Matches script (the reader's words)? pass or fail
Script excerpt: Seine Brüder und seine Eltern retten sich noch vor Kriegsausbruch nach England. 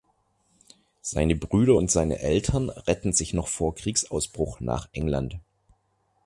pass